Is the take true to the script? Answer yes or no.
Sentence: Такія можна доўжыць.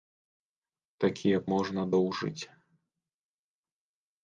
yes